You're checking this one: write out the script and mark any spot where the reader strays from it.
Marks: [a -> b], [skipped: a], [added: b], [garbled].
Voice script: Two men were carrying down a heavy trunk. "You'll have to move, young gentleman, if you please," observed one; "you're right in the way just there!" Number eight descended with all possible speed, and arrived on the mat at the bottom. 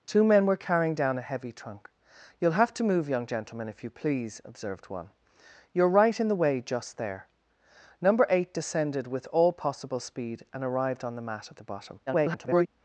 Two men were carrying down a heavy trunk. "You'll have to move, young gentleman, if you please," observed one; "you're right in the way just there!" Number eight descended with all possible speed, and arrived on the mat at the bottom. [garbled]